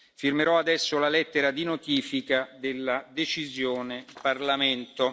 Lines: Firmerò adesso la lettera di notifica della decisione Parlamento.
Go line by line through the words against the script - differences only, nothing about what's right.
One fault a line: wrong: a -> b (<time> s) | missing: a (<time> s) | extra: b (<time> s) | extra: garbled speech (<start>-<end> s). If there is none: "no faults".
no faults